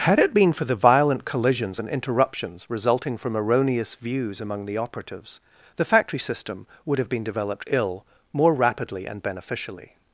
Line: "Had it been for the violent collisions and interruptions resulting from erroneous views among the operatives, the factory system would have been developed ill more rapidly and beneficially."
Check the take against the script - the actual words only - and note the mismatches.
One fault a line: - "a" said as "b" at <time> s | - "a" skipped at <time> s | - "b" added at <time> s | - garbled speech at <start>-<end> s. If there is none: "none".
none